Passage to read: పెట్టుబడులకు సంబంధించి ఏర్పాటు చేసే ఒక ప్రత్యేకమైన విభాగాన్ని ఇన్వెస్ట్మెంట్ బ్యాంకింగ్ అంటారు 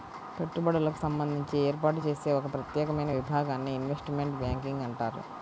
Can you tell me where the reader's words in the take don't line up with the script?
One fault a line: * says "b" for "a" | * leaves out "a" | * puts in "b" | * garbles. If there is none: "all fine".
all fine